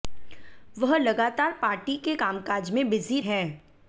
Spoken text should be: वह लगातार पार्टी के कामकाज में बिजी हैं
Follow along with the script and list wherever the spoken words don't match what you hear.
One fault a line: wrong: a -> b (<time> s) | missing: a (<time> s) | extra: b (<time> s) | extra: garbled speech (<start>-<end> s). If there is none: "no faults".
no faults